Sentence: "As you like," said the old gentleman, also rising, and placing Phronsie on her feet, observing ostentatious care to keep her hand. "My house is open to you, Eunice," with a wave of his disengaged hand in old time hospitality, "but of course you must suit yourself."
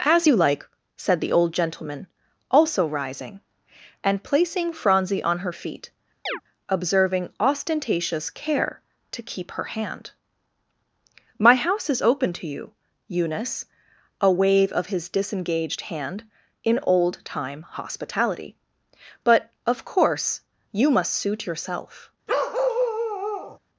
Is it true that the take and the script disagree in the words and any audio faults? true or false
true